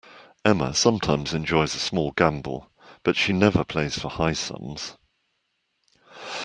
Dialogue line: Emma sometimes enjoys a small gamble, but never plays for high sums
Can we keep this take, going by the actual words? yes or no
no